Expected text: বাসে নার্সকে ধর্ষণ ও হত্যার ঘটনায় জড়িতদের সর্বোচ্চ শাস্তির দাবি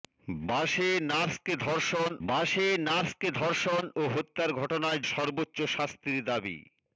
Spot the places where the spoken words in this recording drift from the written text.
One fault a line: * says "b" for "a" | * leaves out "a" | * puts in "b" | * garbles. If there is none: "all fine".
* puts in "বাসে নার্সকে ধর্ষণ"
* leaves out "জড়িতদের"